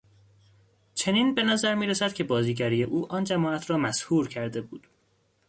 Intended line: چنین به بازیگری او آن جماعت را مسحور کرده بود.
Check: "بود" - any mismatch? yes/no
no